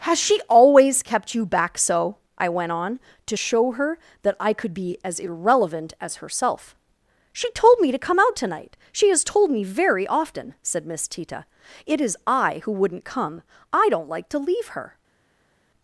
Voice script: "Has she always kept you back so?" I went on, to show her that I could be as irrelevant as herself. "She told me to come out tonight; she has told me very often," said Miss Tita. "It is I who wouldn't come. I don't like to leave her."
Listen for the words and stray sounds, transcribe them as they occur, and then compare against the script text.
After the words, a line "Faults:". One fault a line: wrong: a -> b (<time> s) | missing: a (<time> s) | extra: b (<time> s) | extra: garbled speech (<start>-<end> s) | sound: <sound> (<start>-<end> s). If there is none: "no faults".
"Has she always kept you back so?" I went on, to show her that I could be as irrelevant as herself. "She told me to come out tonight; she has told me very often," said Miss Tita. "It is I who wouldn't come. I don't like to leave her."
Faults:
no faults